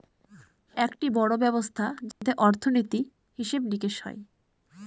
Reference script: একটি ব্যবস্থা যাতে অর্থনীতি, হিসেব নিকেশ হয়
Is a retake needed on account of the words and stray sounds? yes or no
yes